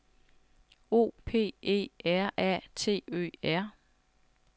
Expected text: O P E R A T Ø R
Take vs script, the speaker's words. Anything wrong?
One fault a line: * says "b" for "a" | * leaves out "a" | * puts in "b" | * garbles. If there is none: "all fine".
all fine